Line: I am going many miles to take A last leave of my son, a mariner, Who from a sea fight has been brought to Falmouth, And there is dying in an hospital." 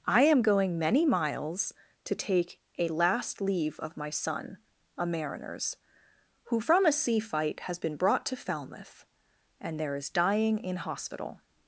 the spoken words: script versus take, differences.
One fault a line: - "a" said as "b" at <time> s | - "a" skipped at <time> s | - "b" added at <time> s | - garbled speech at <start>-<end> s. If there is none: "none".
- "mariner" said as "mariners" at 5.0 s
- "an" skipped at 10.8 s